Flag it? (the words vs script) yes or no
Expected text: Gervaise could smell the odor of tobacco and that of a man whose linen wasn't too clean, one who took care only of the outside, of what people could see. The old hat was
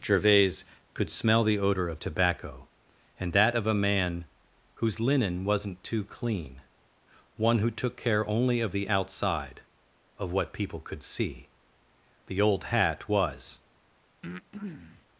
no